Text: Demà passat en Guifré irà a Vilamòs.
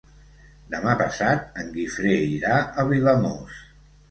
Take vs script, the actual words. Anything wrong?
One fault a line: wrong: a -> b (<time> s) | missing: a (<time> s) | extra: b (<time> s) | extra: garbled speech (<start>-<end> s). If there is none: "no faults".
no faults